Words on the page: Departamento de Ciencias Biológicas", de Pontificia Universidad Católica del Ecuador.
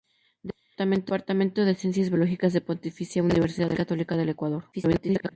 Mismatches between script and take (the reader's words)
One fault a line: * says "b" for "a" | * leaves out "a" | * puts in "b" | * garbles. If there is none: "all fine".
* garbles